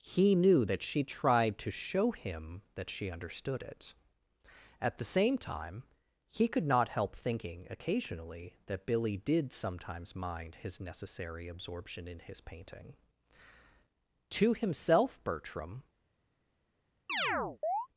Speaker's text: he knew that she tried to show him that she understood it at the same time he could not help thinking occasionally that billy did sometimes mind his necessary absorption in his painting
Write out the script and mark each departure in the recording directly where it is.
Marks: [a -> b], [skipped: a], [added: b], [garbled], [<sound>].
he knew that she tried to show him that she understood it at the same time he could not help thinking occasionally that billy did sometimes mind his necessary absorption in his painting [added: to himself bertram] [chirp]